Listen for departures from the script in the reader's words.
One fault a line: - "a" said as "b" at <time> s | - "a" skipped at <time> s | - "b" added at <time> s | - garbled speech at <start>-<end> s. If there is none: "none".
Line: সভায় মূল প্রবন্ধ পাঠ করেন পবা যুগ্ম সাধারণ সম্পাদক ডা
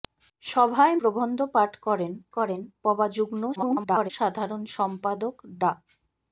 - "মূল" skipped at 0.9 s
- "করেন" added at 2.4 s
- garbled speech at 3.6-4.1 s